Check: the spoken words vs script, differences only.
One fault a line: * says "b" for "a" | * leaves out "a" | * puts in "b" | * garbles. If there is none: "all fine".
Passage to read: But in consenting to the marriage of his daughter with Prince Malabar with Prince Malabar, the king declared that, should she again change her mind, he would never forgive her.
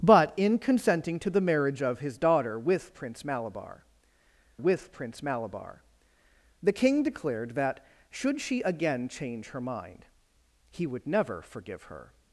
all fine